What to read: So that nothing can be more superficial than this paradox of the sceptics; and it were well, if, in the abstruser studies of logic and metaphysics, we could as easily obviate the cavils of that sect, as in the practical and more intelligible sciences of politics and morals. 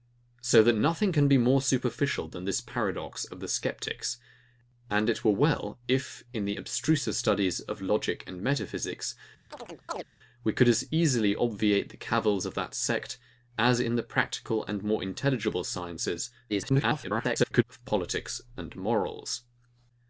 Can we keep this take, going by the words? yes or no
no